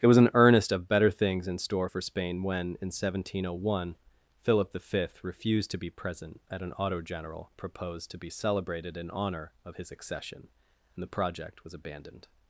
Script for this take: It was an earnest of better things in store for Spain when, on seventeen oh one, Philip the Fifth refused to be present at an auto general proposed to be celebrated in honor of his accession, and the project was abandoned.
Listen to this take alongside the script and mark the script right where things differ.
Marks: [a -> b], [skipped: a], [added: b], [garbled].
It was an earnest of better things in store for Spain when, [on -> in] seventeen oh one, Philip the Fifth refused to be present at an auto general proposed to be celebrated in honor of his accession, and the project was abandoned.